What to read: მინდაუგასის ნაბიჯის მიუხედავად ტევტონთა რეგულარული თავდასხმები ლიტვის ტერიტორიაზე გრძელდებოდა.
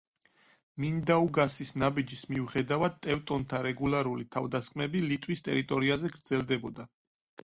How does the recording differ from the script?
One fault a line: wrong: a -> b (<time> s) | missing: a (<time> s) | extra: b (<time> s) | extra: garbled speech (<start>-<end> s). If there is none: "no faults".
no faults